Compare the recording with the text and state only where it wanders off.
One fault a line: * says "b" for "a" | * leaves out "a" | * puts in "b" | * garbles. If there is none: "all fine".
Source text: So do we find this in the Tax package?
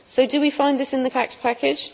all fine